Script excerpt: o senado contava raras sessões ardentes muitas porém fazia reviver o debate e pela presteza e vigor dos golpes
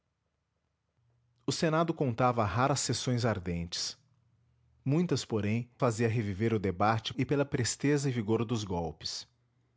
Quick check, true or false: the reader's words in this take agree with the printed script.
true